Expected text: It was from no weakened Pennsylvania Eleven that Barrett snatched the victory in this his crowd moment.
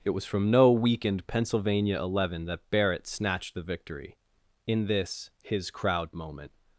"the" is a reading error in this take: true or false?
false